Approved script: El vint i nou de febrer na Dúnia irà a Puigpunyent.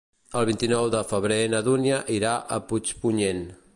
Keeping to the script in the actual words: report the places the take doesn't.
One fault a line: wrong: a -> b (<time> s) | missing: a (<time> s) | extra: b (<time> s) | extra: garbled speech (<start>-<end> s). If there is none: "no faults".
no faults